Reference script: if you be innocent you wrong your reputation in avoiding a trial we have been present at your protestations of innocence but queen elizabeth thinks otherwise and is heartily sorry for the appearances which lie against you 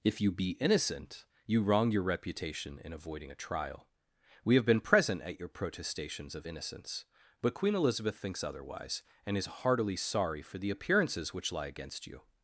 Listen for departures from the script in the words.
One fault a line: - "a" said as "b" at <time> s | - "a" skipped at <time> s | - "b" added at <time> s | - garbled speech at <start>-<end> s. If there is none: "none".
none